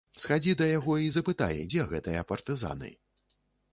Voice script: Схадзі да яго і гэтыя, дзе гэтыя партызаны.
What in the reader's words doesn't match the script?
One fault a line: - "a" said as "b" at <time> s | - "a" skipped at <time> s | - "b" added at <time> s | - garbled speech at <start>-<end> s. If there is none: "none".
- "гэтыя" said as "запытай" at 1.1 s